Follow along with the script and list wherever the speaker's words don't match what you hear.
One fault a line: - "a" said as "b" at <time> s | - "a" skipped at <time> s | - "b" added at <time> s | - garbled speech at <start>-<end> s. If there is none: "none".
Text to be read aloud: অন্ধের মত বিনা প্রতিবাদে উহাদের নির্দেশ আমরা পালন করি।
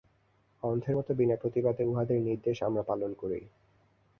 none